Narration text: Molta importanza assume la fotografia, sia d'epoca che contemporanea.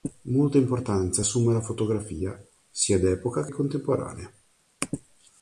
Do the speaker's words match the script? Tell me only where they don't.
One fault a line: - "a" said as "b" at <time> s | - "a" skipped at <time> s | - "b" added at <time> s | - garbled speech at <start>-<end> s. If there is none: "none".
- "che" skipped at 3.5 s